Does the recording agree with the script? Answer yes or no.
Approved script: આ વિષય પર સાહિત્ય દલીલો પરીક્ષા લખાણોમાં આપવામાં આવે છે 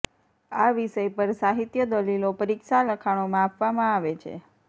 yes